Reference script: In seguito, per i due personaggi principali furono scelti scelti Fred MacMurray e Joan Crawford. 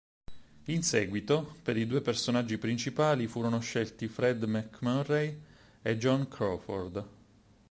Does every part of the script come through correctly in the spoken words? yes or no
no